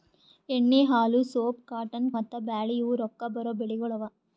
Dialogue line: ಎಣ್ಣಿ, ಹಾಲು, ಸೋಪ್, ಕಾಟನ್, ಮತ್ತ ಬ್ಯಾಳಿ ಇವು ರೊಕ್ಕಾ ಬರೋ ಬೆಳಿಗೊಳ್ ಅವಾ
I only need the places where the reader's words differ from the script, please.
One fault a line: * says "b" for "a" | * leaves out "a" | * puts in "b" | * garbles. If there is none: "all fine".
all fine